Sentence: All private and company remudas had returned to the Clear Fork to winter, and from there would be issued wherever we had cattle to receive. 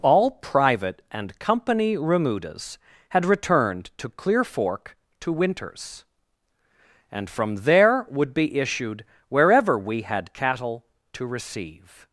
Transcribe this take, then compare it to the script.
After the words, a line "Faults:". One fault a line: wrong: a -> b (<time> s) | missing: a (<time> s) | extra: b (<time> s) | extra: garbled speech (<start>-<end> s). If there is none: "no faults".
All private and company remudas had returned to Clear Fork to winters, and from there would be issued wherever we had cattle to receive.
Faults:
missing: the (4.1 s)
wrong: winter -> winters (5.3 s)